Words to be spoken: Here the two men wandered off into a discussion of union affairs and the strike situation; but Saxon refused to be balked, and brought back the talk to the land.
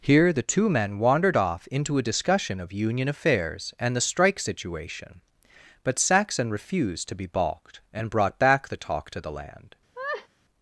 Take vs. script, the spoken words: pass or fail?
pass